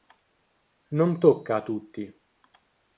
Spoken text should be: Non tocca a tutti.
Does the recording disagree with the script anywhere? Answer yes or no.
no